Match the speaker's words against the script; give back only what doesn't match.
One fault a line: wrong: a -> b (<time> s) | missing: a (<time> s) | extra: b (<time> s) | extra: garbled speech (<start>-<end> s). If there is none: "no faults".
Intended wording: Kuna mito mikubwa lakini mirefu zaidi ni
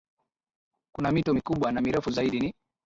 wrong: lakini -> na (1.7 s)